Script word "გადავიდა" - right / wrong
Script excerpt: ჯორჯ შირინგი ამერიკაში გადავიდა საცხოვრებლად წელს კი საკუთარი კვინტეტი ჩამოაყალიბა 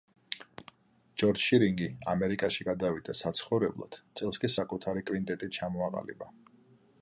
right